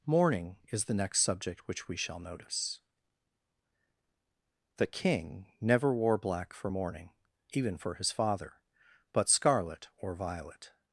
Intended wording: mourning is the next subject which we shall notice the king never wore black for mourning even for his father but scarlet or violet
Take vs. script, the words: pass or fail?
pass